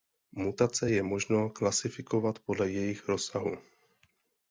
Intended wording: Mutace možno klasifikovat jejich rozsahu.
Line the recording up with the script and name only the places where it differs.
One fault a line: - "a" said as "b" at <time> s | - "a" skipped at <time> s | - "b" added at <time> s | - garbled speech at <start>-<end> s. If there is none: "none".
- "je" added at 0.9 s
- "podle" added at 2.4 s